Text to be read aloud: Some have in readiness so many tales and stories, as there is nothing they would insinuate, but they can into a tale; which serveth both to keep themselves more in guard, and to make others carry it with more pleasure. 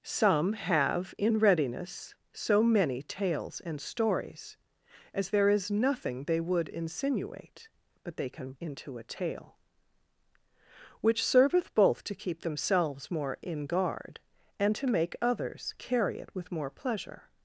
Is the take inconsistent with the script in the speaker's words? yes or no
no